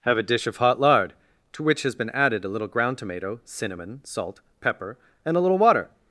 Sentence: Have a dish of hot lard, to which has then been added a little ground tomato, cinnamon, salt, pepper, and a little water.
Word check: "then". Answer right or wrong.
wrong